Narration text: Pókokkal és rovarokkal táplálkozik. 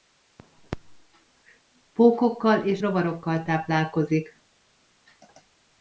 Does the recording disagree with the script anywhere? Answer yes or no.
no